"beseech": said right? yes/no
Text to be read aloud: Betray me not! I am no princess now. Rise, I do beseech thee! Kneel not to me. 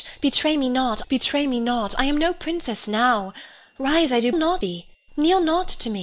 no